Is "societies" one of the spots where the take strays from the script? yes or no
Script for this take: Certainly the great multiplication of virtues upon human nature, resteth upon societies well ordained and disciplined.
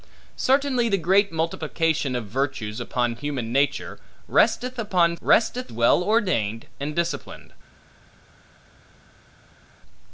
yes